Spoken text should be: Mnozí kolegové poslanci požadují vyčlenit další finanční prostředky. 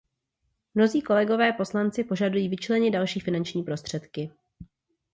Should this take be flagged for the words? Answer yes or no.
no